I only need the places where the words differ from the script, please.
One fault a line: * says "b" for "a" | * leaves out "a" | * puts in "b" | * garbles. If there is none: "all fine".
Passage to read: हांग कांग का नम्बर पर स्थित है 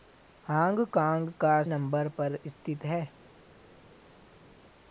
all fine